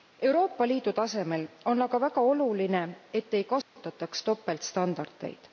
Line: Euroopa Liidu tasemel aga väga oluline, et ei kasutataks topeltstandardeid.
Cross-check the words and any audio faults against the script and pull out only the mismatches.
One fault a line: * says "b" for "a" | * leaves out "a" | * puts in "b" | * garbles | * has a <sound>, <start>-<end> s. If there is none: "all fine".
* puts in "on"
* has a dropout, 3.6-3.8 s